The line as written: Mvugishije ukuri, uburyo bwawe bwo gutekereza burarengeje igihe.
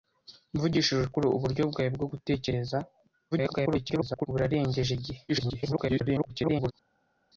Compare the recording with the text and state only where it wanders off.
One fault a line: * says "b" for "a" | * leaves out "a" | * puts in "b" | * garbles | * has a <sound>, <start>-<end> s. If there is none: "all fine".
* garbles
* garbles